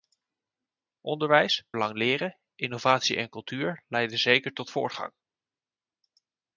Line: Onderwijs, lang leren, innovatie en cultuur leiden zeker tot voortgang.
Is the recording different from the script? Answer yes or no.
no